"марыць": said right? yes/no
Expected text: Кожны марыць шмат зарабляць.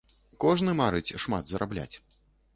yes